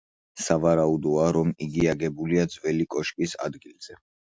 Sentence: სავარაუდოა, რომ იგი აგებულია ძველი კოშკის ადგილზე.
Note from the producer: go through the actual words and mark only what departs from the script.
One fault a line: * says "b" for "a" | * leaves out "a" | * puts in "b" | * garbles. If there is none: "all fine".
all fine